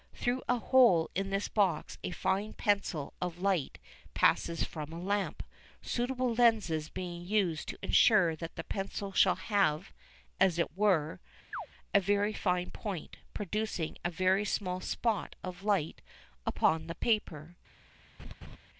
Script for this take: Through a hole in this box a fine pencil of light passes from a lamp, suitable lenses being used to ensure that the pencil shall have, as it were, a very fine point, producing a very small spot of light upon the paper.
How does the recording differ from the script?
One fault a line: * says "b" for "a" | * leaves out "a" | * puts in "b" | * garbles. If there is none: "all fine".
all fine